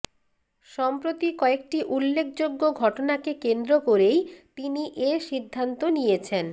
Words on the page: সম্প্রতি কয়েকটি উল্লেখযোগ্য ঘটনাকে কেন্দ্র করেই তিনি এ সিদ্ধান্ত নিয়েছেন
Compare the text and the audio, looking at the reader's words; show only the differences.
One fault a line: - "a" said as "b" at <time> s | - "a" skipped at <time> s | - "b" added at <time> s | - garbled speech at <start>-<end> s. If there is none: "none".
none